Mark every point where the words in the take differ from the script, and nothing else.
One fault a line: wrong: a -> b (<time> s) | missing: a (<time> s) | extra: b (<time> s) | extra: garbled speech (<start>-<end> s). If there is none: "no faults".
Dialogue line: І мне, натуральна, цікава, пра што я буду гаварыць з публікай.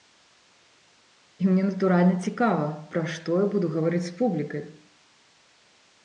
no faults